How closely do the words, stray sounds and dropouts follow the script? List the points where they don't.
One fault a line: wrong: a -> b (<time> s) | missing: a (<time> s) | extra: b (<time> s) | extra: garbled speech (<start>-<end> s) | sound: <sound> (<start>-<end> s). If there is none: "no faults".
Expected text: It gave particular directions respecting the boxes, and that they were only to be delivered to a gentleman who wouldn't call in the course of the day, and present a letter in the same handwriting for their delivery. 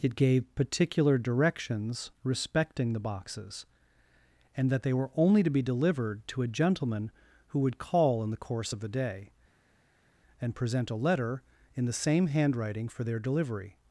wrong: wouldn't -> would (7.6 s)